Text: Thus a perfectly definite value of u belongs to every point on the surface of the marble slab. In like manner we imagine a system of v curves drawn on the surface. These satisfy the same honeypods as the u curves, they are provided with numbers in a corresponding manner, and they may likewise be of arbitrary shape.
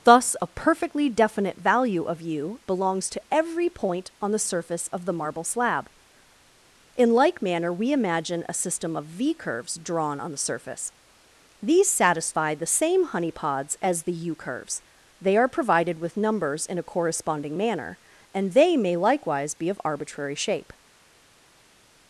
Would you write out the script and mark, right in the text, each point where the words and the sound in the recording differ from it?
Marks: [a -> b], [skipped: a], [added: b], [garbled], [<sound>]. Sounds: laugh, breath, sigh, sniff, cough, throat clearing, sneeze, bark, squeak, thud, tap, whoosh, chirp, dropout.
Thus a perfectly definite value of u belongs to every point on the surface of the marble slab. In like manner we imagine a system of v curves drawn on the surface. These satisfy the same honeypods as the u curves, they are provided with numbers in a corresponding manner, and they may likewise be of arbitrary shape.